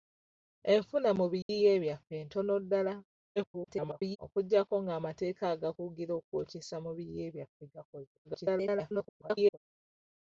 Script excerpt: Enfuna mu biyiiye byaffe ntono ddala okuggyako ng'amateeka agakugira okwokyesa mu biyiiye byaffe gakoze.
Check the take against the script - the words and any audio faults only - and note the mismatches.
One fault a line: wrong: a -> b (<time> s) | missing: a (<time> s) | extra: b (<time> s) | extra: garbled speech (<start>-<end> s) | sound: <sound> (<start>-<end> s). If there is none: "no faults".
sound: dropout (1.4-1.5 s)
extra: garbled speech (3.4-4.2 s)
extra: garbled speech (8.2-9.6 s)